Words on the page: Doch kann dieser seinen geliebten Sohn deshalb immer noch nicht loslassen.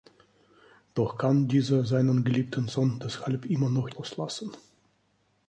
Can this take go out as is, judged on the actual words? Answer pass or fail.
fail